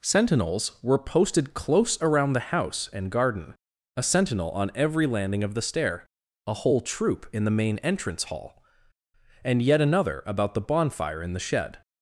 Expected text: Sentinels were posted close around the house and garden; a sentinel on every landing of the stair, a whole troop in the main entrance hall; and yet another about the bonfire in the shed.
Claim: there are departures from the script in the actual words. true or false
false